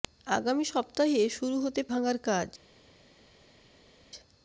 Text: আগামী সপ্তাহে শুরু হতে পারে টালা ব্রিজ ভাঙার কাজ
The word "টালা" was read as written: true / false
false